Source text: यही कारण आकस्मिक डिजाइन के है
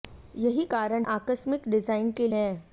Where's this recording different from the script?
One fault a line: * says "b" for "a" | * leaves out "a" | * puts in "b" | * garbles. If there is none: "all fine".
all fine